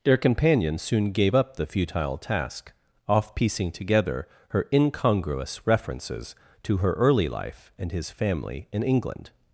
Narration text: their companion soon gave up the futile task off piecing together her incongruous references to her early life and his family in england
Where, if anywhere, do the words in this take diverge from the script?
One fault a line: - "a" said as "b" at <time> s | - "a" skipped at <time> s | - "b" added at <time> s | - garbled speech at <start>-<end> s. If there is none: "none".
none